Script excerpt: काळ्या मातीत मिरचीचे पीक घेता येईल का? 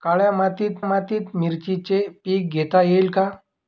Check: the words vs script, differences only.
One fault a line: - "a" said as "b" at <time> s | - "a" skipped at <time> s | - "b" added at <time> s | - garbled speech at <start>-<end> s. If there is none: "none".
- "मातीत" added at 0.8 s